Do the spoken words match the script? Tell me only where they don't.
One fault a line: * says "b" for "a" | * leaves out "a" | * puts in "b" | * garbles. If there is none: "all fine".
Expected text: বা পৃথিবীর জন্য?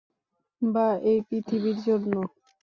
* puts in "এই"